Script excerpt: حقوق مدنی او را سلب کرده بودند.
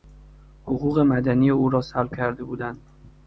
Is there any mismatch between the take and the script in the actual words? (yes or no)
no